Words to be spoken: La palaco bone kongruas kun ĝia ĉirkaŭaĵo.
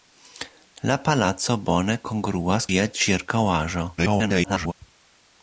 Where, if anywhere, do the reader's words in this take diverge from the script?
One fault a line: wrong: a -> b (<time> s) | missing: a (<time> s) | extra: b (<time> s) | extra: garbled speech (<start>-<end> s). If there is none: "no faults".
missing: kun (2.7 s)
extra: garbled speech (4.0-4.7 s)